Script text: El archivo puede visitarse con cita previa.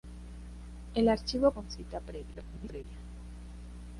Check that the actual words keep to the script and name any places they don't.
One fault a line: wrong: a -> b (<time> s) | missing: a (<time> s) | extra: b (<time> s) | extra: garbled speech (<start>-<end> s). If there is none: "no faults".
missing: puede visitarse (1.5 s)
extra: garbled speech (2.3-2.8 s)